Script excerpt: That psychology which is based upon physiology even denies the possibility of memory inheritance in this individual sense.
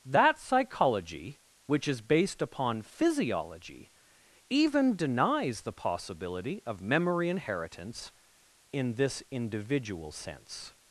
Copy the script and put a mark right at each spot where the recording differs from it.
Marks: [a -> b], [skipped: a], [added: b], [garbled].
That psychology which is based upon physiology even denies the possibility of memory inheritance in this individual sense.